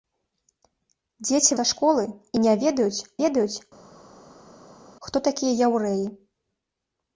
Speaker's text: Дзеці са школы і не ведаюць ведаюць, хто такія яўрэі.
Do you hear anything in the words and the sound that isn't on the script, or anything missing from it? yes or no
no